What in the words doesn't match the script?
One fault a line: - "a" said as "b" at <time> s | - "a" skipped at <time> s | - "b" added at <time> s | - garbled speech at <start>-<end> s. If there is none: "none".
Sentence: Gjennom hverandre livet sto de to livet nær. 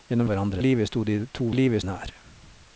none